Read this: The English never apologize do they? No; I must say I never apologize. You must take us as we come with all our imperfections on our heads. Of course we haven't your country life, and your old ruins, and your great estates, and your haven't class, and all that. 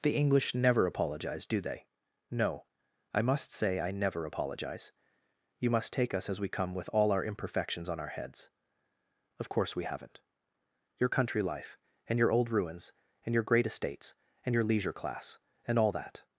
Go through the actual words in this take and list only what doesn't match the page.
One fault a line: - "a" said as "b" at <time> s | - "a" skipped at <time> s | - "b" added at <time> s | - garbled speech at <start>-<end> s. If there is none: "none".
- "haven't" said as "leisure" at 14.6 s